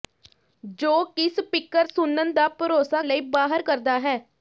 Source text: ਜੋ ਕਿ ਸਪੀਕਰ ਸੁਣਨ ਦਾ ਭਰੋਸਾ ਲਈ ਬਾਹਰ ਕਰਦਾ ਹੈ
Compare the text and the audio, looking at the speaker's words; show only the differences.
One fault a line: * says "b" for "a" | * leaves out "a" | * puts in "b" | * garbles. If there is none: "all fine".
all fine